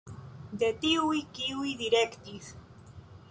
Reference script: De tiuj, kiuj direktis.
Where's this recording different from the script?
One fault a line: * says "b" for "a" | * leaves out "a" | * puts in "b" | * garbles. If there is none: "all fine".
all fine